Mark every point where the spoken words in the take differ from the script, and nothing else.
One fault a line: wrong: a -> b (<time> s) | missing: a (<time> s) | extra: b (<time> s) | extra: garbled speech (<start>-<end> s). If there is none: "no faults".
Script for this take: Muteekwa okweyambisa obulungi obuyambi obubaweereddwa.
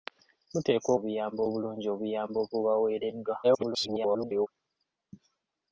wrong: okweyambisa -> obuyambi (1.0 s)
extra: garbled speech (3.4-4.5 s)